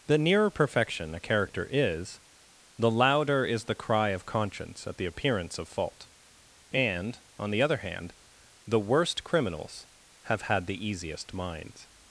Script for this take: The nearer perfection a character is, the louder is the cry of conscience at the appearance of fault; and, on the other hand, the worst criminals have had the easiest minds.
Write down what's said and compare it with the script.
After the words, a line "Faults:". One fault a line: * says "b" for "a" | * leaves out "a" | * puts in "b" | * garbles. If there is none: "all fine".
The nearer perfection a character is, the louder is the cry of conscience at the appearance of fault; and, on the other hand, the worst criminals have had the easiest minds.
Faults:
all fine